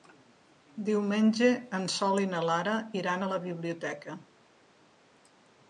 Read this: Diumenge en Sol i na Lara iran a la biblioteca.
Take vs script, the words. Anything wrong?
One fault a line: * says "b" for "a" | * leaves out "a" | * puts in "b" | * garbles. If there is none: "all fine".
all fine